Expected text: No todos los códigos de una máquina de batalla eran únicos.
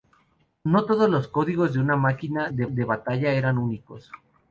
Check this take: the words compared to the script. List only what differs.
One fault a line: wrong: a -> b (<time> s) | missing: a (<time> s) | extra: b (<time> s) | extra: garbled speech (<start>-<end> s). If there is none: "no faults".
extra: de (2.7 s)